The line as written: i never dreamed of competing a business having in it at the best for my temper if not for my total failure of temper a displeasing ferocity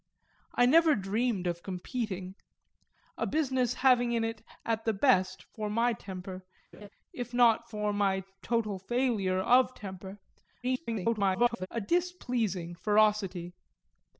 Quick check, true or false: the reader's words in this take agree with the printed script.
false